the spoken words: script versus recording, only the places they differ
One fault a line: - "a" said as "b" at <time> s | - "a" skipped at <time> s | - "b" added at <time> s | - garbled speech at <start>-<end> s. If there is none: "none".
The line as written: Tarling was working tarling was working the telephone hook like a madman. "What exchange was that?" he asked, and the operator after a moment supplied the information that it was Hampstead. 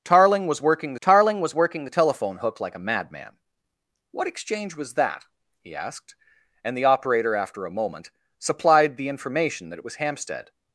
none